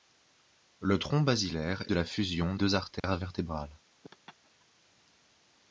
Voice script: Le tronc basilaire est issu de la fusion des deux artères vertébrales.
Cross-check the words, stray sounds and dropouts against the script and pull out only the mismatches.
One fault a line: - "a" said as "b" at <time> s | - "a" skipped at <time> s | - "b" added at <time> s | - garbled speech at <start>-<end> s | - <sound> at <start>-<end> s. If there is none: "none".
- "est issu" skipped at 1.8 s
- "des" skipped at 2.5 s
- dropout at 3.0-3.0 s
- laugh at 4.0-4.7 s